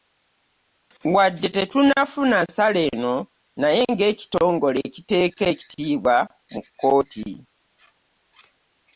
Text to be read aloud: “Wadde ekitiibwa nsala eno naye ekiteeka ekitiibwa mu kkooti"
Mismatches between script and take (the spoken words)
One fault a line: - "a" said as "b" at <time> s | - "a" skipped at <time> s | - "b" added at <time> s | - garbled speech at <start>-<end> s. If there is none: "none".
- "ekitiibwa" said as "tetunnafuna" at 1.6 s
- "ng'ekitongole" added at 3.9 s